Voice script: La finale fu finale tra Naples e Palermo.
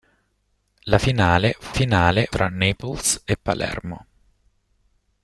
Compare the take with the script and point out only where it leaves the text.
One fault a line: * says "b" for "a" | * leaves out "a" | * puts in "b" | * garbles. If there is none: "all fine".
all fine